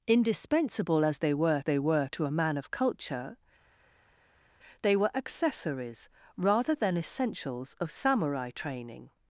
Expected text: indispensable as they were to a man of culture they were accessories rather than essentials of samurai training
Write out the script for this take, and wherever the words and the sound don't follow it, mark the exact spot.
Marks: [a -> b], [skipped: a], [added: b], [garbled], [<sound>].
indispensable as they were [added: they were] to a man of culture they were accessories rather than essentials of samurai training